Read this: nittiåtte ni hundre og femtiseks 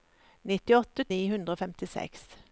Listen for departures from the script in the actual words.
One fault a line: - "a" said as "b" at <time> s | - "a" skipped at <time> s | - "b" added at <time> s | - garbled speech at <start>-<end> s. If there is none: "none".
none